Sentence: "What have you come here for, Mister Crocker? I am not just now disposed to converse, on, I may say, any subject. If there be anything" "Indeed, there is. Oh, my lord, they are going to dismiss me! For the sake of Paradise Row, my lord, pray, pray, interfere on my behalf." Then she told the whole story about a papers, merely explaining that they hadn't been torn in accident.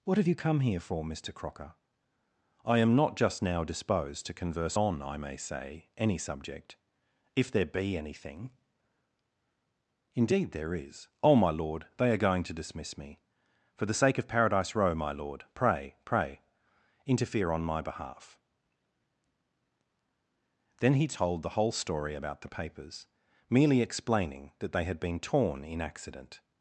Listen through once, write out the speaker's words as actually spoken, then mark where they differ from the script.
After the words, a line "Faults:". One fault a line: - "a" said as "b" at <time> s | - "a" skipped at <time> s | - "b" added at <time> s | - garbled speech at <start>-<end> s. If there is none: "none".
"What have you come here for, Mister Crocker? I am not just now disposed to converse, on, I may say, any subject. If there be anything" "Indeed, there is. Oh, my lord, they are going to dismiss me! For the sake of Paradise Row, my lord, pray, pray, interfere on my behalf." Then he told the whole story about the papers, merely explaining that they had been torn in accident.
Faults:
- "she" said as "he" at 20.9 s
- "a" said as "the" at 22.4 s
- "hadn't" said as "had" at 24.8 s